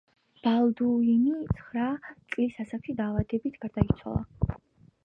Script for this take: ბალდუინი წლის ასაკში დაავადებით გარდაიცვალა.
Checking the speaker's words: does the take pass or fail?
fail